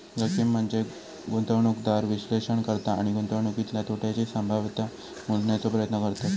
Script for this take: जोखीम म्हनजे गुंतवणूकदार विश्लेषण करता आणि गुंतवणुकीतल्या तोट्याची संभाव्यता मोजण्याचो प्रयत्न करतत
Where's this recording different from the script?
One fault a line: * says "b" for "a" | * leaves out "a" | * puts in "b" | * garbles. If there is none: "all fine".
all fine